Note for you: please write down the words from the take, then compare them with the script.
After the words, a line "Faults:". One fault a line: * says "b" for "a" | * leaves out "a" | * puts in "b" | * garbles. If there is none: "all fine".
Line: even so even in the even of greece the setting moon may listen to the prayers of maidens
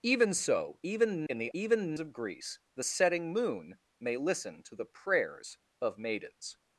even so even in the even of greece the setting moon may listen to the prayers of maidens
Faults:
all fine